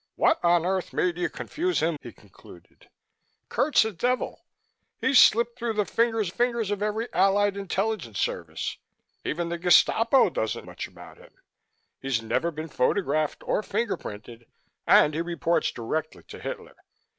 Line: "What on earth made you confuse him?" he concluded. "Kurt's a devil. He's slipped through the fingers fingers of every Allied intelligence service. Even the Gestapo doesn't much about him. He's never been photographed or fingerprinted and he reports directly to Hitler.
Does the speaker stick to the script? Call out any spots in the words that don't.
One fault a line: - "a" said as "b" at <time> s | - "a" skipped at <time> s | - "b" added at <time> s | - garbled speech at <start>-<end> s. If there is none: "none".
none